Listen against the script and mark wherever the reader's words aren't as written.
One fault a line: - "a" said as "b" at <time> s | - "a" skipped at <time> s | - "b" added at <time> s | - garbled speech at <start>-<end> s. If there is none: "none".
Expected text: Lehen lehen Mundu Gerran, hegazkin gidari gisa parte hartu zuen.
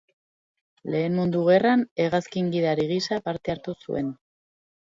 - "lehen" skipped at 1.2 s